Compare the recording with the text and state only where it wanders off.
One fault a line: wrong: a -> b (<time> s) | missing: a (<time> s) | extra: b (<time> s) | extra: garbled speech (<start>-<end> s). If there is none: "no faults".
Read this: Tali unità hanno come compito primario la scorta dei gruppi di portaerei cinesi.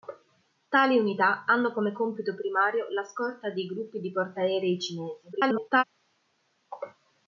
extra: garbled speech (5.3-5.8 s)